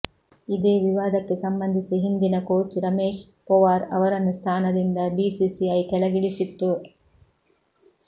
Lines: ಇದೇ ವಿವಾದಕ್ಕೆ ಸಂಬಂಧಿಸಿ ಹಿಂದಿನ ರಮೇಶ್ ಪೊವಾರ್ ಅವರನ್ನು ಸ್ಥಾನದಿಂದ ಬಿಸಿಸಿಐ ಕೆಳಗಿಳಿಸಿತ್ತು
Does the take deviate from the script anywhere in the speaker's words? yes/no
yes